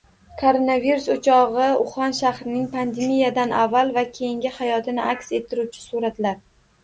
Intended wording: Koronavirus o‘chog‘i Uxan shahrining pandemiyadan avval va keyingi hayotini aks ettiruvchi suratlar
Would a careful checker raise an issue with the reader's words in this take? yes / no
no